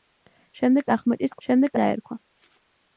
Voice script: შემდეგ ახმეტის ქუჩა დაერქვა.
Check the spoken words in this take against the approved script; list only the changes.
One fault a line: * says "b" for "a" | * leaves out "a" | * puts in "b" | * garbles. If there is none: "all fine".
* says "შემდეგ" for "ქუჩა"